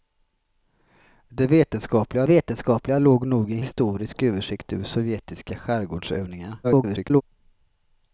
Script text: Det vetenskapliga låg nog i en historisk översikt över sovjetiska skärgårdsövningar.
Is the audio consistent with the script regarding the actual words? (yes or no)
no